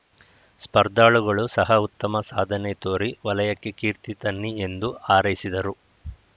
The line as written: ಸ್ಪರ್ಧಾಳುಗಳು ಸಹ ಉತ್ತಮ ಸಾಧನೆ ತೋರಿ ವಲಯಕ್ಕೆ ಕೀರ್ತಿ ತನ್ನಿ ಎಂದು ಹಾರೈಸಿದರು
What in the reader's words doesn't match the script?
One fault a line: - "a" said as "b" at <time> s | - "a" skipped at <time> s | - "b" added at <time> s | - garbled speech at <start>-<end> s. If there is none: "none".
none